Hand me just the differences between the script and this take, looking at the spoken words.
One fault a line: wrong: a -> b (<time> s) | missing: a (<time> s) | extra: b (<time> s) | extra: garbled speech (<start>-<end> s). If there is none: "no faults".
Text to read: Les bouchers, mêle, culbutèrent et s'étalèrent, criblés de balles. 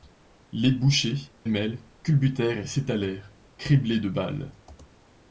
no faults